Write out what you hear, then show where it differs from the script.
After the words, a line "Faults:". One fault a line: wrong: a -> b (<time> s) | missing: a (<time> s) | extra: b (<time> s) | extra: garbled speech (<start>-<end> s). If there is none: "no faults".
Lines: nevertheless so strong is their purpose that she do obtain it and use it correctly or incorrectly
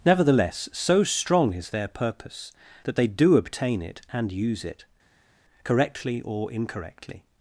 nevertheless so strong is their purpose that they do obtain it and use it correctly or incorrectly
Faults:
wrong: she -> they (2.9 s)